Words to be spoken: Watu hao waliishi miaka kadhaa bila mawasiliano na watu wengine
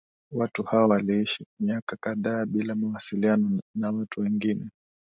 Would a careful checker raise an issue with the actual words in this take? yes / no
no